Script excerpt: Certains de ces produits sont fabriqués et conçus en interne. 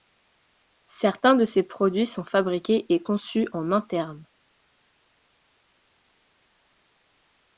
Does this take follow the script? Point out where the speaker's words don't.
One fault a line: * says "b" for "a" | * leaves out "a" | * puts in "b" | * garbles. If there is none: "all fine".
all fine